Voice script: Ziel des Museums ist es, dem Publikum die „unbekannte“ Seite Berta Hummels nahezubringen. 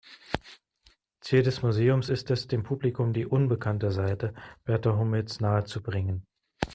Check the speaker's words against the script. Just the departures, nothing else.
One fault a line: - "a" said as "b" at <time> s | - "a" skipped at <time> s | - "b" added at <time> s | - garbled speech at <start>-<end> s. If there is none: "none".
none